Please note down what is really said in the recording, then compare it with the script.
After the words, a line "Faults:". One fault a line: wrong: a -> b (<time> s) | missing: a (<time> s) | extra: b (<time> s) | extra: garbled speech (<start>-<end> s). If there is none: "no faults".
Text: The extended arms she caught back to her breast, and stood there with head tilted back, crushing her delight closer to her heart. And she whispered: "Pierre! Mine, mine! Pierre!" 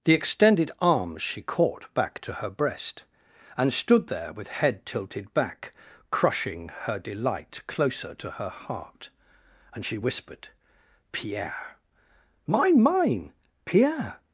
The extended arms she caught back to her breast, and stood there with head tilted back, crushing her delight closer to her heart. And she whispered: "Pierre! Mine, mine! Pierre!"
Faults:
no faults